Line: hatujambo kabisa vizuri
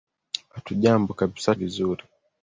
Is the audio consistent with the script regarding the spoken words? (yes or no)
yes